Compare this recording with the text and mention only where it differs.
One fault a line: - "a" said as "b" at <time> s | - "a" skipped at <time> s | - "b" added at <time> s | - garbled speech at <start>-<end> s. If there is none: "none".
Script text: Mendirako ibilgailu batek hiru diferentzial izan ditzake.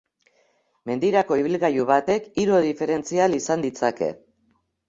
none